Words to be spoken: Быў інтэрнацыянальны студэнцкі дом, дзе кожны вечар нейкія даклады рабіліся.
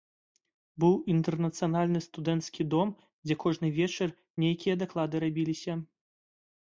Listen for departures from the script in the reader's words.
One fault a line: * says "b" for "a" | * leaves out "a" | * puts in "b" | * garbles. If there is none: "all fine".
all fine